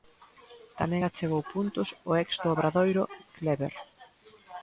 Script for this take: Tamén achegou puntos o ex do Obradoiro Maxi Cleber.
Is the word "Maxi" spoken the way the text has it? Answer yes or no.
no